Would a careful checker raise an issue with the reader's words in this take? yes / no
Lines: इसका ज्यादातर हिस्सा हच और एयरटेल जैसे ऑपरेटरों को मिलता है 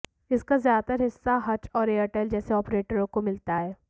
no